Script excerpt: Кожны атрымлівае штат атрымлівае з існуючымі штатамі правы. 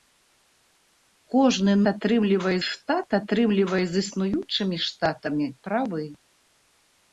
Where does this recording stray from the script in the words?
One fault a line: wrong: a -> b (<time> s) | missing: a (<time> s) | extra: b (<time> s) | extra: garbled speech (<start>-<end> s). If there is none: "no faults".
no faults